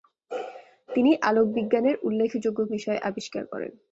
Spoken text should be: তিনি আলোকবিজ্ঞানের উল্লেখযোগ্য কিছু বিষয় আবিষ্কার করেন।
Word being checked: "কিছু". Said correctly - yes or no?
no